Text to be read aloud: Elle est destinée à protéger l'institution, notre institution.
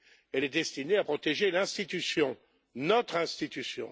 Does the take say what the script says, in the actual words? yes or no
yes